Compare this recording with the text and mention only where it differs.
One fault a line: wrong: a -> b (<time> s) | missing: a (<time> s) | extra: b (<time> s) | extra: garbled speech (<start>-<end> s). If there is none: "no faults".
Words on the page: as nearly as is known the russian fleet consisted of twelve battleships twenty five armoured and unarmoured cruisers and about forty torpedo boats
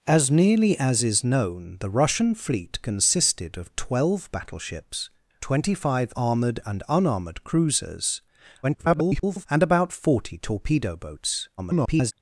extra: garbled speech (8.6-9.5 s)
extra: garbled speech (11.6-12.1 s)